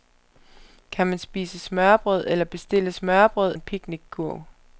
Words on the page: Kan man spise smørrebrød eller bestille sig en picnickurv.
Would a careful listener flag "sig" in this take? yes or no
yes